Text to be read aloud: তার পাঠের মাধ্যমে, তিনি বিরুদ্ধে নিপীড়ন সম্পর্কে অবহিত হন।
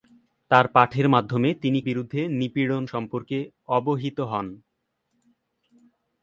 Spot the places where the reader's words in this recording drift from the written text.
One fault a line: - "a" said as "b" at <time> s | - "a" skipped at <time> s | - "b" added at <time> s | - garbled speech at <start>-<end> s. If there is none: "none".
none